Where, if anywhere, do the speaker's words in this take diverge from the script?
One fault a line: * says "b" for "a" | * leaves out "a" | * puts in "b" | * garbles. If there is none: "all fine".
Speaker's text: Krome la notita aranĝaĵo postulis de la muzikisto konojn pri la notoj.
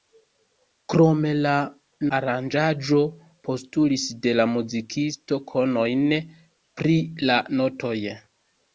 * leaves out "notita"